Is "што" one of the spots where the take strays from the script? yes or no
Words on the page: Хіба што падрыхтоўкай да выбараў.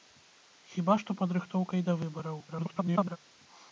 no